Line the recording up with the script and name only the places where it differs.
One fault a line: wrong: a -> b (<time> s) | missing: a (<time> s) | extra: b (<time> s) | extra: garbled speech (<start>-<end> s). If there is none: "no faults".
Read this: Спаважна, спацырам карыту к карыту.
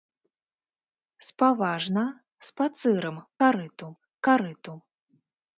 no faults